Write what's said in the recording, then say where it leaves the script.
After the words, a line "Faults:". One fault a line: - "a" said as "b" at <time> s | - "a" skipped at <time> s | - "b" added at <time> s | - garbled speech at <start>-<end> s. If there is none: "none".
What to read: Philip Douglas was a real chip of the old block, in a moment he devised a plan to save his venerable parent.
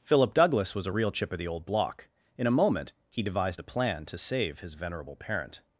Philip Douglas was a real chip of the old block, in a moment he devised a plan to save his venerable parent.
Faults:
none